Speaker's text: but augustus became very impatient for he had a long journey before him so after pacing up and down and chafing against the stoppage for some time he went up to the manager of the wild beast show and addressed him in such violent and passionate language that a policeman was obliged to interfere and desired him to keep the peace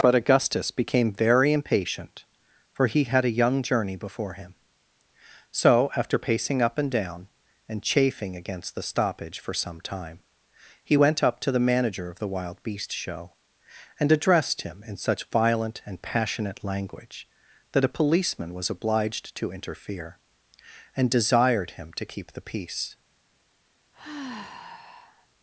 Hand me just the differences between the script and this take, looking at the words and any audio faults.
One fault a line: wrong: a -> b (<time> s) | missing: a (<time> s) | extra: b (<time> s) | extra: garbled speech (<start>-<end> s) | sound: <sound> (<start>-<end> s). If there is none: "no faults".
wrong: long -> young (3.4 s)
sound: sigh (23.9-25.3 s)